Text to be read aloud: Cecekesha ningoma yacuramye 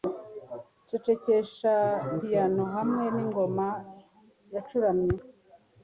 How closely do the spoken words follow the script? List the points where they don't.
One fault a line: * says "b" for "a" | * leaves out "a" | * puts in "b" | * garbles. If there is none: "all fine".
* puts in "piyano hamwe"